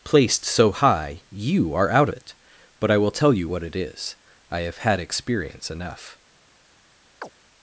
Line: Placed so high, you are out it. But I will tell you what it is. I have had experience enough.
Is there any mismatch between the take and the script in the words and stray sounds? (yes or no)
yes